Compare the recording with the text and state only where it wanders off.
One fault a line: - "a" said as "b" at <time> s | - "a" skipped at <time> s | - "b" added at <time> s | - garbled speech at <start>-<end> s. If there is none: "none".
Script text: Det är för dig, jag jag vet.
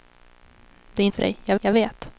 none